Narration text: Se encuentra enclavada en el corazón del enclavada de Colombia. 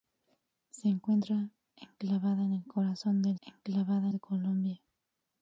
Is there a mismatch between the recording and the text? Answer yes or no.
no